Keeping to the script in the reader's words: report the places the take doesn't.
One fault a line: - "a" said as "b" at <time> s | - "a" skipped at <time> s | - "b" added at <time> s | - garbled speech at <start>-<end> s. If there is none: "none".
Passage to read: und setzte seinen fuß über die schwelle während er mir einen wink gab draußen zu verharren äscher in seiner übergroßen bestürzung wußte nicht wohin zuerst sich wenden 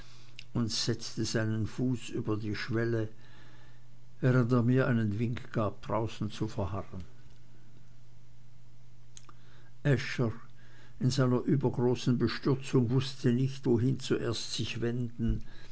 none